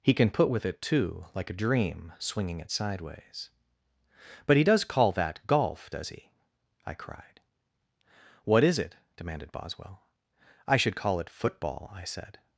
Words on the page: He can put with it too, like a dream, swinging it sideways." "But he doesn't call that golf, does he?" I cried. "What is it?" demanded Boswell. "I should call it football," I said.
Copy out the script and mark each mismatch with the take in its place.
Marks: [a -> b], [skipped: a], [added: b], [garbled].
He can put with it too, like a dream, swinging it sideways." "But he [doesn't -> does] call that golf, does he?" I cried. "What is it?" demanded Boswell. "I should call it football," I said.